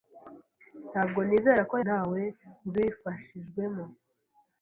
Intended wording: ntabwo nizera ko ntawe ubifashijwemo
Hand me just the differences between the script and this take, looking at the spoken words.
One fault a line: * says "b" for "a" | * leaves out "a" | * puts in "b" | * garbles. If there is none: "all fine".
all fine